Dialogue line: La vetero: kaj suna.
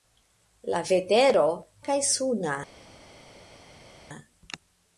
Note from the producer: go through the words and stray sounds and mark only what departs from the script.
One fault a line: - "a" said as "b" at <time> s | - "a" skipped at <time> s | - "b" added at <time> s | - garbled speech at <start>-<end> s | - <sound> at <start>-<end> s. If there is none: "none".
none